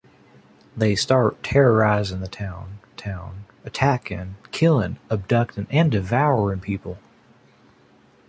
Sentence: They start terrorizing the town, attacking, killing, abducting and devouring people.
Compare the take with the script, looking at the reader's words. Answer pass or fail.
fail